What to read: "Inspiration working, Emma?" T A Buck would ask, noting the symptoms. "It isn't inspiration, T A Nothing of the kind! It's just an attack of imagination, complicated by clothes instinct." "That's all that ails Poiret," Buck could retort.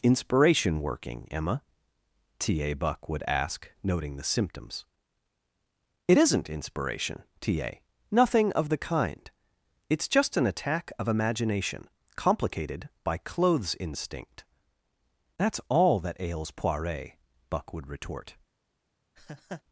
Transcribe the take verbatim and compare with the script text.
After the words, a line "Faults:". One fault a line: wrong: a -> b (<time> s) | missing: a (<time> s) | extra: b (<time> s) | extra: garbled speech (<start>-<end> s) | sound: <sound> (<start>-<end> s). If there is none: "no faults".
"Inspiration working, Emma?" T A Buck would ask, noting the symptoms. "It isn't inspiration, T A Nothing of the kind! It's just an attack of imagination, complicated by clothes instinct." "That's all that ails Poiret," Buck would retort.
Faults:
wrong: could -> would (17.7 s)
sound: laugh (19.2-19.6 s)